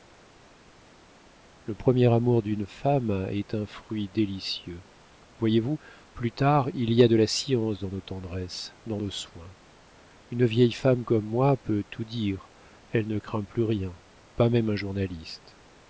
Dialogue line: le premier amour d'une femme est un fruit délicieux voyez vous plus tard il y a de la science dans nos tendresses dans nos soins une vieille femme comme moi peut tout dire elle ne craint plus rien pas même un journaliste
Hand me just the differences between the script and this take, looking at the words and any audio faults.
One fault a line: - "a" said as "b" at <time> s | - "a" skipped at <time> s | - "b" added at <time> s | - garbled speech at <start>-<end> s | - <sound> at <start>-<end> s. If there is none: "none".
none